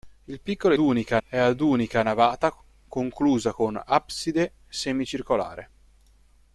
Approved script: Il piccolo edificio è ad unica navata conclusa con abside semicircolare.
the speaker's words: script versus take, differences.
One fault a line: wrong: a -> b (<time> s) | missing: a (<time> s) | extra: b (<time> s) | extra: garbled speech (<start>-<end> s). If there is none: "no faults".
wrong: edificio -> unica (0.8 s)